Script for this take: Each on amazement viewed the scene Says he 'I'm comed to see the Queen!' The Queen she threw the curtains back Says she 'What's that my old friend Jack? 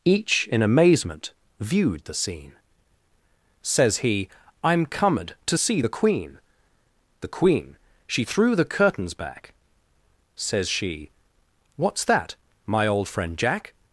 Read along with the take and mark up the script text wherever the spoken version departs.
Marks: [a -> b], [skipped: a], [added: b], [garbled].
Each [on -> in] amazement viewed the scene Says he 'I'm comed to see the Queen!' The Queen she threw the curtains back Says she 'What's that my old friend Jack?